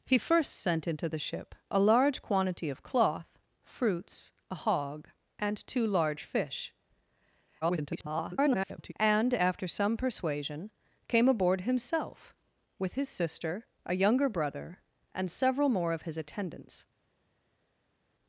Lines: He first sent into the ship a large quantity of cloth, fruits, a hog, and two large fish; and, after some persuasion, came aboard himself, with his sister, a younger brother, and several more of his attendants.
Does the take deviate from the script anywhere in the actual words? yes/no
yes